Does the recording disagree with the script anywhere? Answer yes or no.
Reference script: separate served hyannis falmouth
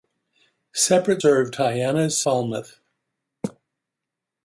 no